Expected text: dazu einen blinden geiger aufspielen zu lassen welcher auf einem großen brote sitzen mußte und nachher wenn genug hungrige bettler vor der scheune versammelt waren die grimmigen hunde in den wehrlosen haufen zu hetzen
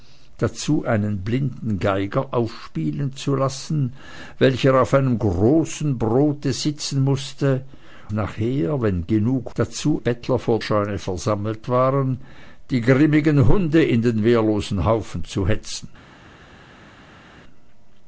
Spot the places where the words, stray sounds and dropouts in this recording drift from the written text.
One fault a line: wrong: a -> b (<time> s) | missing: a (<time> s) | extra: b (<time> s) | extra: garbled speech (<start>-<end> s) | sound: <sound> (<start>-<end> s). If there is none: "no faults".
missing: und (7.7 s)
wrong: hungrige -> dazu (9.6 s)
missing: der (10.6 s)